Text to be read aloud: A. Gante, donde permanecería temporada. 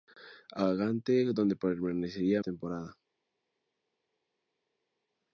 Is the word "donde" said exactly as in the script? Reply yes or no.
yes